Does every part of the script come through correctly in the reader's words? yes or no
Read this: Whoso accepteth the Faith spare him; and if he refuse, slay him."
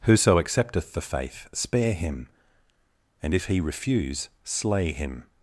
yes